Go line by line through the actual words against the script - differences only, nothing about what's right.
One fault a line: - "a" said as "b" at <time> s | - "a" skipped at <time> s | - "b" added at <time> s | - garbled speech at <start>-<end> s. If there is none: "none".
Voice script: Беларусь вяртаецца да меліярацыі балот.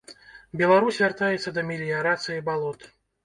none